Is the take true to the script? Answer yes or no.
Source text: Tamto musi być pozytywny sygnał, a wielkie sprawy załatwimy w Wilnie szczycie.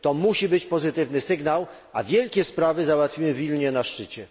no